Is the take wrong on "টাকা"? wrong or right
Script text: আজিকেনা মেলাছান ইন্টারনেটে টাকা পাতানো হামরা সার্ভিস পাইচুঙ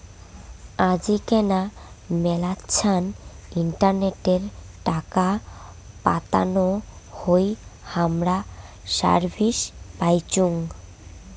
right